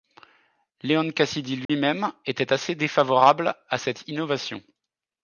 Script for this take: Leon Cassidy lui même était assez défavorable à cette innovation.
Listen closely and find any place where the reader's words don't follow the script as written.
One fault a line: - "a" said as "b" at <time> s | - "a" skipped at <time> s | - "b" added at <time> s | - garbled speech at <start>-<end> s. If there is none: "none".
none